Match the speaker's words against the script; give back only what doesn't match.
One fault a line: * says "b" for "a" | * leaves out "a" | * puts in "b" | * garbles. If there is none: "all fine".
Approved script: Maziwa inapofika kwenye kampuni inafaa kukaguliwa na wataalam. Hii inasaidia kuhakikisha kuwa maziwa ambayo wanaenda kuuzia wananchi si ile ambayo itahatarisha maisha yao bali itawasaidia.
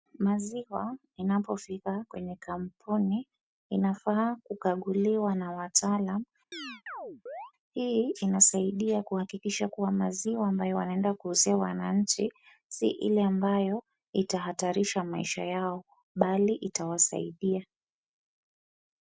all fine